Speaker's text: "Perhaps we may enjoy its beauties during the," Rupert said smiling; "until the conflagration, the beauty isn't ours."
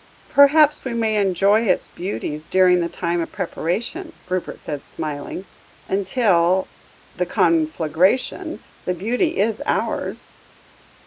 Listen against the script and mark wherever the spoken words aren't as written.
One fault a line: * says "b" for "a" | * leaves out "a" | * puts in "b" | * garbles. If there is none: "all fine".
* puts in "time of preparation"
* says "is" for "isn't"